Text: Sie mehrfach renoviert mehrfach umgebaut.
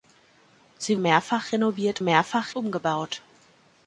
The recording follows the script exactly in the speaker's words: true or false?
true